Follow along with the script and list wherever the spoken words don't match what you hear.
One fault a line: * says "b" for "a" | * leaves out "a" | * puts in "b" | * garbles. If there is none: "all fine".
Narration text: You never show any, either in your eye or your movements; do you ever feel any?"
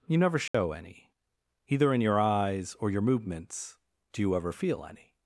* says "eyes" for "eye"